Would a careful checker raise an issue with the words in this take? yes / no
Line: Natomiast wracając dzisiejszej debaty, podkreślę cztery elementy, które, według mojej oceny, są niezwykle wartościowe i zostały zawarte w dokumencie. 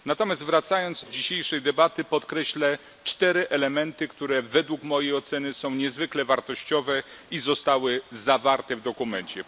no